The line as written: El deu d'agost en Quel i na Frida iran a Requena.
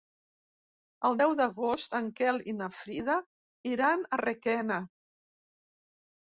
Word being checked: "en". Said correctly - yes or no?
yes